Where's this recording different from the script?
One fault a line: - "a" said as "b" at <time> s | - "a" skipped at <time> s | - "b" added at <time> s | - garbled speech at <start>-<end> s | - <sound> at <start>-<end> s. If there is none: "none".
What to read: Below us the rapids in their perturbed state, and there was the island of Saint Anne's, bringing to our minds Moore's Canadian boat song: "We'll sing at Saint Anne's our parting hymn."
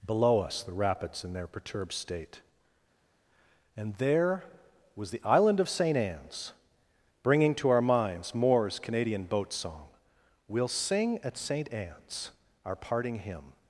none